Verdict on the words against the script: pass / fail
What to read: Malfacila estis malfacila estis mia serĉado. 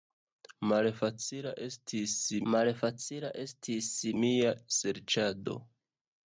pass